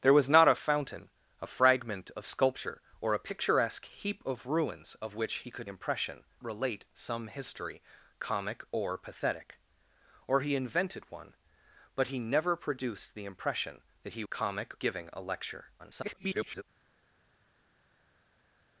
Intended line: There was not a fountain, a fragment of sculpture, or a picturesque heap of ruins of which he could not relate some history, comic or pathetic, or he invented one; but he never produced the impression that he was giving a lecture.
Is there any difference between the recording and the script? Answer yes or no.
yes